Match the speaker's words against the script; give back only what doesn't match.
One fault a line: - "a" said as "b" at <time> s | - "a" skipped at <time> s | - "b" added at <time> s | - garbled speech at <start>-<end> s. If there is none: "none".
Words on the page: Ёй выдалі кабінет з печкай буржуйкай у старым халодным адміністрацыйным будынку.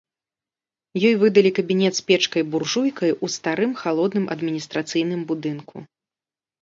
none